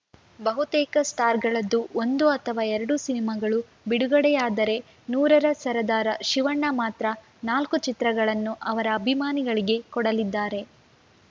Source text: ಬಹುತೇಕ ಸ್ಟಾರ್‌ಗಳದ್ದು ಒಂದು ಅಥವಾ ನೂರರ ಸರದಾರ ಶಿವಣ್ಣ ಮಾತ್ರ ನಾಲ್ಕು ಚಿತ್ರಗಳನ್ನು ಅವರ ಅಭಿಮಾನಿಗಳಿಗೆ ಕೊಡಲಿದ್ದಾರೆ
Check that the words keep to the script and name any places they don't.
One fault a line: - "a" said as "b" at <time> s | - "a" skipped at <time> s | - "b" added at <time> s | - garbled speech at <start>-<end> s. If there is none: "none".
- "ಎರಡು ಸಿನಿಮಾಗಳು ಬಿಡುಗಡೆಯಾದರೆ" added at 2.7 s